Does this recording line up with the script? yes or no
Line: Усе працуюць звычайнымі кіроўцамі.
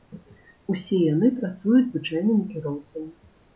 no